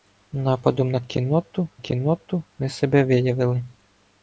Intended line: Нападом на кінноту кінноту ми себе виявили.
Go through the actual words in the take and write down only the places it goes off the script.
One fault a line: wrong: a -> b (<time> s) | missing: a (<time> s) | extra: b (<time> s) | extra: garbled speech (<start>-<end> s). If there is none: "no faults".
no faults